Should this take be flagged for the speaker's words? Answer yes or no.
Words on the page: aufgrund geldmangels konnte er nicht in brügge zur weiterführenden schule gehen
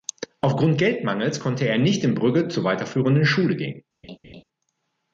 no